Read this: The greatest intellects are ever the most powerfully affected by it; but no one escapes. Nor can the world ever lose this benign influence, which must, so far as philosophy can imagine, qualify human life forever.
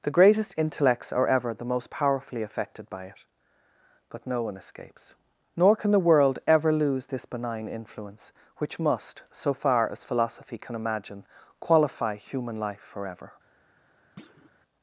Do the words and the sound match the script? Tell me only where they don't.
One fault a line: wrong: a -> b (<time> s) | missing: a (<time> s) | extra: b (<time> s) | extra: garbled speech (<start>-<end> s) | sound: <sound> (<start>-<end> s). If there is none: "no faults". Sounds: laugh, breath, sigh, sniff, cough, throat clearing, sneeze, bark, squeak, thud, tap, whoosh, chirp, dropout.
sound: thud (14.2-14.5 s)